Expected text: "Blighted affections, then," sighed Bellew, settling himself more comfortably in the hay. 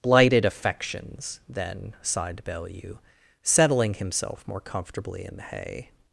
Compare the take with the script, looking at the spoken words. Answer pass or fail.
pass